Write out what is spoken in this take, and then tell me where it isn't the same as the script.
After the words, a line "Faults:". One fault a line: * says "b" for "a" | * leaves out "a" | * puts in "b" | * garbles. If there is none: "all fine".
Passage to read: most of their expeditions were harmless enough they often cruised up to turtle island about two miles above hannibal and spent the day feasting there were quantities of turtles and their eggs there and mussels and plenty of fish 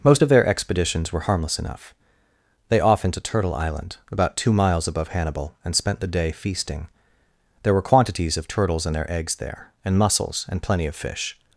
most of their expeditions were harmless enough they often to turtle island about two miles above hannibal and spent the day feasting there were quantities of turtles and their eggs there and mussels and plenty of fish
Faults:
* leaves out "cruised up"